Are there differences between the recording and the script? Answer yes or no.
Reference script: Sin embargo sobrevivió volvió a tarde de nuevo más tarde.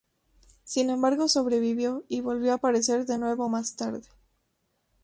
yes